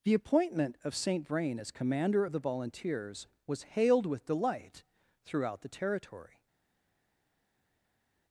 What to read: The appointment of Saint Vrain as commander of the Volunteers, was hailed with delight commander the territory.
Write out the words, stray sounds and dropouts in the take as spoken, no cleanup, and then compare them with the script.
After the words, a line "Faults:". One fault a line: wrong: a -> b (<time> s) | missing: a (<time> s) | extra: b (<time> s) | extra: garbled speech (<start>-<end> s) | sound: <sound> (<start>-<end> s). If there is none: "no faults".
The appointment of Saint Vrain as commander of the Volunteers, was hailed with delight throughout the territory.
Faults:
wrong: commander -> throughout (5.2 s)